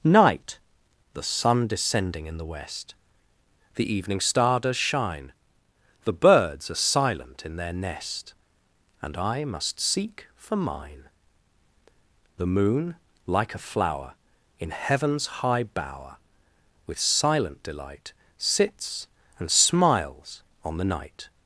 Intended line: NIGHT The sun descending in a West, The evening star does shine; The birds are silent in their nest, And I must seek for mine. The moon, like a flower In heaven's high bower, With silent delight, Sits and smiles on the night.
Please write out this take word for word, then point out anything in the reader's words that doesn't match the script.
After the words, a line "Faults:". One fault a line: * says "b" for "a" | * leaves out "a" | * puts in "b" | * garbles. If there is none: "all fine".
NIGHT The sun descending in the West, The evening star does shine; The birds are silent in their nest, And I must seek for mine. The moon, like a flower In heaven's high bower, With silent delight, Sits and smiles on the night.
Faults:
* says "the" for "a"